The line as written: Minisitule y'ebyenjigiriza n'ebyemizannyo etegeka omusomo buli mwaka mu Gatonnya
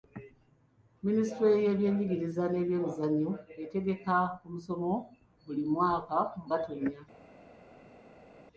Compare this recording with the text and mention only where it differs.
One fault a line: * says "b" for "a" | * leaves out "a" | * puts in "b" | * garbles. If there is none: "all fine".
all fine